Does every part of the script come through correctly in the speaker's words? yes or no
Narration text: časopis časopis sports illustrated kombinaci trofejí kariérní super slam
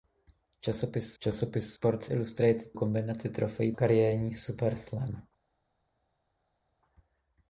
yes